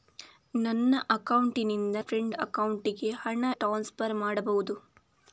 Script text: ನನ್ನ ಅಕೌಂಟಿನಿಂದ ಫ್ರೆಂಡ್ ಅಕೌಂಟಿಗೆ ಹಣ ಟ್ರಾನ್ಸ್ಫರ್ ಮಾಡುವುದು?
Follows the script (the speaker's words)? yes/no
yes